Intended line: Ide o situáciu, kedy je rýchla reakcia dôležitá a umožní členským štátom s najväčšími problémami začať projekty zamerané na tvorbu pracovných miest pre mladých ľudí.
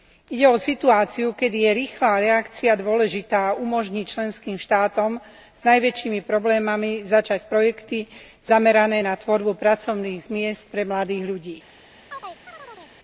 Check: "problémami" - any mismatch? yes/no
no